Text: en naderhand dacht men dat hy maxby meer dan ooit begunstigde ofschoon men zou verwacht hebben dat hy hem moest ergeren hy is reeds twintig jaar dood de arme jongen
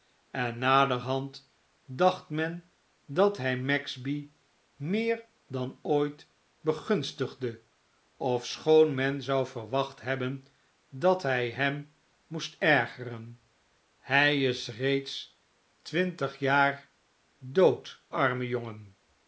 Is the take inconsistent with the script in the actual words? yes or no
yes